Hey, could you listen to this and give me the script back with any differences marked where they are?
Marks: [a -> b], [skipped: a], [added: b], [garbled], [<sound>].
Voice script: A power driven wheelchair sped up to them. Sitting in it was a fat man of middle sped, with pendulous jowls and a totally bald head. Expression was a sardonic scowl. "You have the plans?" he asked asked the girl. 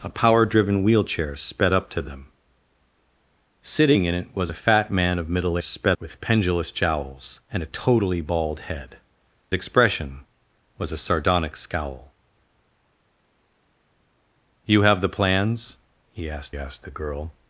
A power driven wheelchair sped up to them. Sitting in it was a fat man of middle sped, with pendulous jowls and a totally bald head. Expression was a sardonic scowl. "You have the plans?" he asked asked the girl.